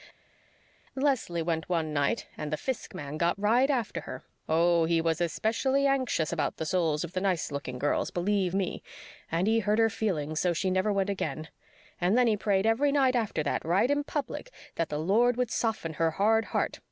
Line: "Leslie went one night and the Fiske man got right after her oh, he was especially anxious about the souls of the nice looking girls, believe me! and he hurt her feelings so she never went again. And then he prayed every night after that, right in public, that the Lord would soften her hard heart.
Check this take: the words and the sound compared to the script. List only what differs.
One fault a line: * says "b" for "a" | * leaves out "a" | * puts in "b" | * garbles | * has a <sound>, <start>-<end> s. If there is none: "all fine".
all fine